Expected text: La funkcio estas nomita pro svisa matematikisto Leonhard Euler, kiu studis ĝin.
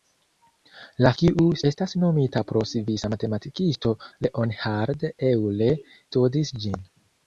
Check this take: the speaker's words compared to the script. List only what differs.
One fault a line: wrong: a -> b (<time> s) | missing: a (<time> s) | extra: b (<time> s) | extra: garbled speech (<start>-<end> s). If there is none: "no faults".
wrong: funkcio -> kiu (1.2 s)
missing: kiu (5.9 s)